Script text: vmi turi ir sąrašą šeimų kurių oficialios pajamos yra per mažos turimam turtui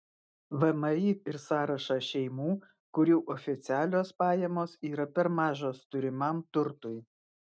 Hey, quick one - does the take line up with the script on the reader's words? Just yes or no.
no